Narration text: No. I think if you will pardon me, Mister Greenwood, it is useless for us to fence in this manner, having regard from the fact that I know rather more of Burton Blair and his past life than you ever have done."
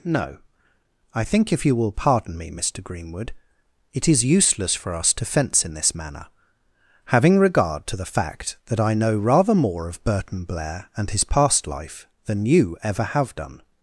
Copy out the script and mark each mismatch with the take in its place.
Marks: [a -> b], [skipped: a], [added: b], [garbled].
No. I think if you will pardon me, Mister Greenwood, it is useless for us to fence in this manner, having regard [from -> to] the fact that I know rather more of Burton Blair and his past life than you ever have done."